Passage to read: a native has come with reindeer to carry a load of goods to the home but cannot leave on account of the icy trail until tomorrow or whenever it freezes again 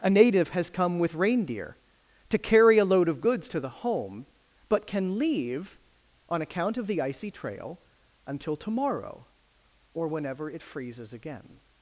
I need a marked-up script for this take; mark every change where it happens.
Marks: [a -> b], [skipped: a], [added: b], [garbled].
a native has come with reindeer to carry a load of goods to the home but [cannot -> can] leave on account of the icy trail until tomorrow or whenever it freezes again